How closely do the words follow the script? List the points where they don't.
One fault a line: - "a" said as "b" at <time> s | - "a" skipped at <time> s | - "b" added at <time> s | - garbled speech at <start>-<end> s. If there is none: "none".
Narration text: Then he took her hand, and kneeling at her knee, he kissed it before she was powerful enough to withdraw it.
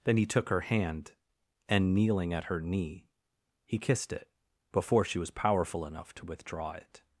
none